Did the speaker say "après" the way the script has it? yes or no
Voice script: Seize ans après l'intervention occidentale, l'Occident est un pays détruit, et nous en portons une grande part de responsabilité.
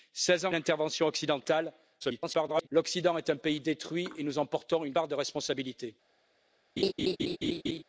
no